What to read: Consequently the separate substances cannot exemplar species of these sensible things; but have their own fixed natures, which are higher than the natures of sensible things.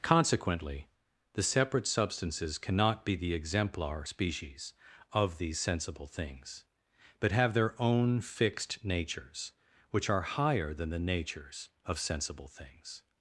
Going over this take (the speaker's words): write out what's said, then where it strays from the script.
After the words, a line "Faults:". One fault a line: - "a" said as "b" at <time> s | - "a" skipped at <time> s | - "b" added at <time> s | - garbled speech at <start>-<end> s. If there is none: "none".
Consequently the separate substances cannot be the exemplar species of these sensible things; but have their own fixed natures, which are higher than the natures of sensible things.
Faults:
- "be the" added at 3.0 s